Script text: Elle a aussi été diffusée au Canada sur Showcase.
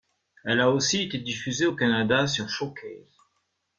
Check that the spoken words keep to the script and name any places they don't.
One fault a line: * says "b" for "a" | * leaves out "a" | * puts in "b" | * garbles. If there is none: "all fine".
all fine